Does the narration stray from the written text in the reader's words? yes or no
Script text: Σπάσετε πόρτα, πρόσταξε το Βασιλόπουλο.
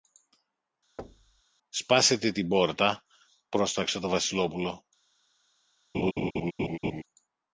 yes